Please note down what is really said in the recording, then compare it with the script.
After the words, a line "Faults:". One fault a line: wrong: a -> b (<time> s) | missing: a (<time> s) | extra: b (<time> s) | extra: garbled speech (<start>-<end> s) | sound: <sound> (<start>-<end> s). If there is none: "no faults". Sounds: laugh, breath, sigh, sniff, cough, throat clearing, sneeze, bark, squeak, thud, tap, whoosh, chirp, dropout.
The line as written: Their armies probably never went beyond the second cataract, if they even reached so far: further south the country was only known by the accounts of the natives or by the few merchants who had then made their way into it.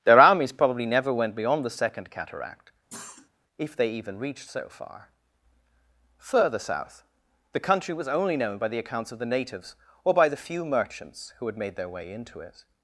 Their armies probably never went beyond the second cataract, if they even reached so far: further south the country was only known by the accounts of the natives or by the few merchants who had made their way into it.
Faults:
sound: cough (2.9-3.3 s)
missing: then (11.6 s)